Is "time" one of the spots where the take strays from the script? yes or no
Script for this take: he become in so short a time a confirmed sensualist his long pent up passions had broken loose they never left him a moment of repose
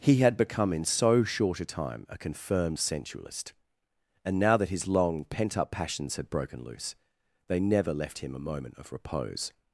no